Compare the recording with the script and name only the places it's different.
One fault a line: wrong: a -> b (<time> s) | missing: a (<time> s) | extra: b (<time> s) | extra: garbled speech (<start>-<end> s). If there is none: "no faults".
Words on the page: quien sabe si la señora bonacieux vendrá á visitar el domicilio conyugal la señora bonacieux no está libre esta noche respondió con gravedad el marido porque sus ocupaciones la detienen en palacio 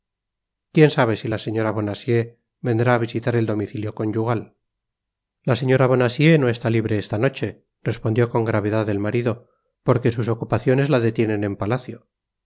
no faults